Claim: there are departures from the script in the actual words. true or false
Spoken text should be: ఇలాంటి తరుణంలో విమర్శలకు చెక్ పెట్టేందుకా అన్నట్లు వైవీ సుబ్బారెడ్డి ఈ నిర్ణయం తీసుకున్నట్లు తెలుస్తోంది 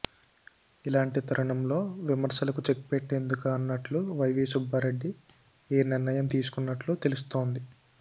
false